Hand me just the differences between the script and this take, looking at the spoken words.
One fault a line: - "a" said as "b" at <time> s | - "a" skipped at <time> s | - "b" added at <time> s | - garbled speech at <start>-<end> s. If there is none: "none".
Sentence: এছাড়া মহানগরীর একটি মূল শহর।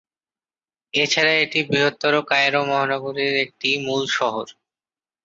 - "এটি বৃহত্তর কায়রো" added at 1.4 s